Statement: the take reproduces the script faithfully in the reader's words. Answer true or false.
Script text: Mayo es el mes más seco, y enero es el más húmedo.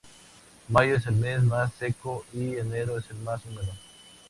true